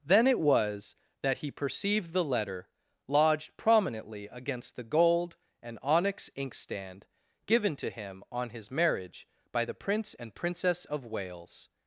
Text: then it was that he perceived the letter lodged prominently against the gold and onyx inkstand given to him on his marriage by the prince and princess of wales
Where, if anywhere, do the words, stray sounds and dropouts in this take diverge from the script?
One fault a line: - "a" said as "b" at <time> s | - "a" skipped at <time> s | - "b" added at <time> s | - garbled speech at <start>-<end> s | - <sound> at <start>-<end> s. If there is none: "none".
none